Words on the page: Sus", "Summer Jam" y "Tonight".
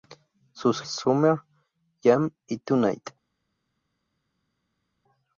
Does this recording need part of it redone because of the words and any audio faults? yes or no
no